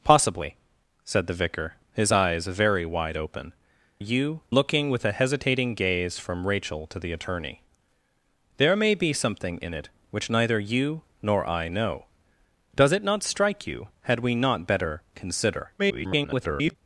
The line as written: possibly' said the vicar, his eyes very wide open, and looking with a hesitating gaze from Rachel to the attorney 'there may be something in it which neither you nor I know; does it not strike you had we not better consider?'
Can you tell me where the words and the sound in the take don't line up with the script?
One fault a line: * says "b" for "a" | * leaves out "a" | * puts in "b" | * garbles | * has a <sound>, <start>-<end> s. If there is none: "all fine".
* says "you" for "and"
* garbles